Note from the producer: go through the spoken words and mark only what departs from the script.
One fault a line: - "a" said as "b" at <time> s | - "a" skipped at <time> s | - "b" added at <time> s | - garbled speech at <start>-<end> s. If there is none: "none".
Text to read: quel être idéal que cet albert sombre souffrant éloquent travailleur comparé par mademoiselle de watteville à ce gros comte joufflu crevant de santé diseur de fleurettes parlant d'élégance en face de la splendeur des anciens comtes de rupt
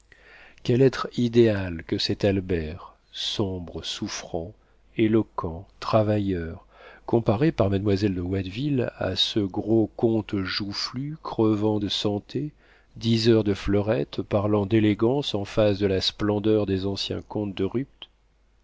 none